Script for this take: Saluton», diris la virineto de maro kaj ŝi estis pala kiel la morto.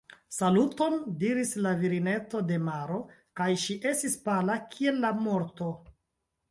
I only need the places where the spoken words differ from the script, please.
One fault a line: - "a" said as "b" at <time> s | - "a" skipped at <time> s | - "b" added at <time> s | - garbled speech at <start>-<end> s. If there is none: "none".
none